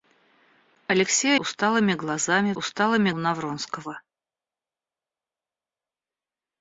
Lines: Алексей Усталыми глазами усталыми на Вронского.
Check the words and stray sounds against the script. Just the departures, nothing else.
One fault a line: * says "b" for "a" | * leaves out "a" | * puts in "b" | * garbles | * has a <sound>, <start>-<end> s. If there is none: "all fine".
all fine